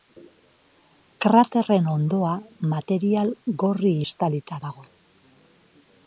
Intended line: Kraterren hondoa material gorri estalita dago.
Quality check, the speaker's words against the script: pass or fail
pass